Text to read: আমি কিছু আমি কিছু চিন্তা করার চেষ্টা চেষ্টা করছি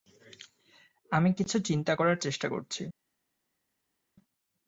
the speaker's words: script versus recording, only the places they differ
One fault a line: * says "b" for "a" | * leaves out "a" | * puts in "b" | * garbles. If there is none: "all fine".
* leaves out "আমি কিছু"
* leaves out "চেষ্টা"